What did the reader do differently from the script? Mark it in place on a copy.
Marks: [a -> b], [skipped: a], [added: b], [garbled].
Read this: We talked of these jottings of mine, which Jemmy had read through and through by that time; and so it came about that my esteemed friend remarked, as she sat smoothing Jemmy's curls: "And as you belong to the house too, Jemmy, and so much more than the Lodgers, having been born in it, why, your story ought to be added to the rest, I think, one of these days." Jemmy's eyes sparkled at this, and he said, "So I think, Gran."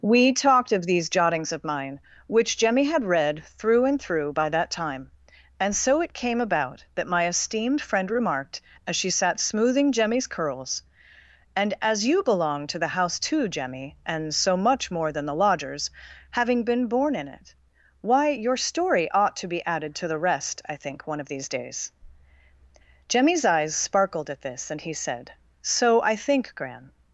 We talked of these jottings of mine, which Jemmy had read through and through by that time; and so it came about that my esteemed friend remarked, as she sat smoothing Jemmy's curls: "And as you belong to the house too, Jemmy, and so much more than the Lodgers, having been born in it, why, your story ought to be added to the rest, I think, one of these days." Jemmy's eyes sparkled at this, and he said, "So I think, Gran."